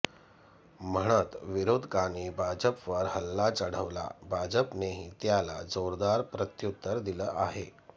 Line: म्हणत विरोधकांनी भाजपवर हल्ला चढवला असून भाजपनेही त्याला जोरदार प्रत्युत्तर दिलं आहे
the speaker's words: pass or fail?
fail